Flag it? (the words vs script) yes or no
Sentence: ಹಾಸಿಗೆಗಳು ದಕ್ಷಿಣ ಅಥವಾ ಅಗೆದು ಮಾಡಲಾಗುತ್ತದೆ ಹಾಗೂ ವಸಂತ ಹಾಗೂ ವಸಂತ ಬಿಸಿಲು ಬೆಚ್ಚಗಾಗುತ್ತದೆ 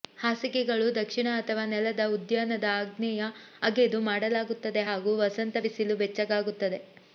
yes